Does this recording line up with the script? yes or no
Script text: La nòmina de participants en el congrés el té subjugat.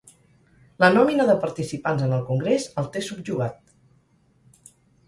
yes